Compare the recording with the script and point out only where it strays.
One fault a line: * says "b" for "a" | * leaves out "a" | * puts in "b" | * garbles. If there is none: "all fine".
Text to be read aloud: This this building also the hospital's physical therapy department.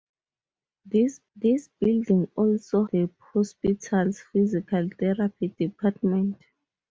all fine